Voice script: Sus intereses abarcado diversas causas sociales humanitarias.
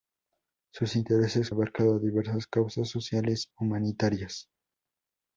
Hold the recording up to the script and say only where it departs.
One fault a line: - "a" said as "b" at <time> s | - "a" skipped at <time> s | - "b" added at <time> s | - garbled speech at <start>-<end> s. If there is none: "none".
none